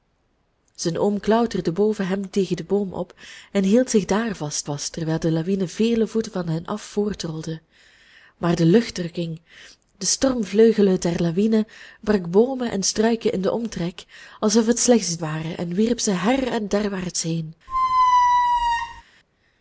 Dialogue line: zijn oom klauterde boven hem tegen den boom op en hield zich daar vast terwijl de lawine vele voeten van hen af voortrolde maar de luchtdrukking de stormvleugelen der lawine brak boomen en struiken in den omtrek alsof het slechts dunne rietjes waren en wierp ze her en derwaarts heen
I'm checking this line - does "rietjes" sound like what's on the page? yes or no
no